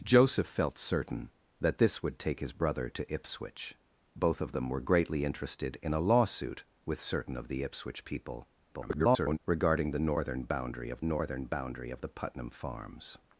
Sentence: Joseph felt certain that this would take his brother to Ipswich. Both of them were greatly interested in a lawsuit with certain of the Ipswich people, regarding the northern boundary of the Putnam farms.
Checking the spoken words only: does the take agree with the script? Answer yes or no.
no